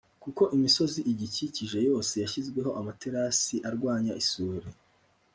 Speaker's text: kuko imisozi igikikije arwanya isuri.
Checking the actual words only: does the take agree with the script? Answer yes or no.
no